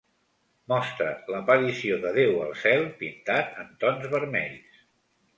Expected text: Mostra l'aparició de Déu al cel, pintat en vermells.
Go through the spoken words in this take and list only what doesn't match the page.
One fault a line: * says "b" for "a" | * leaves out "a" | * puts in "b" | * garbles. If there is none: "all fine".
* puts in "tons"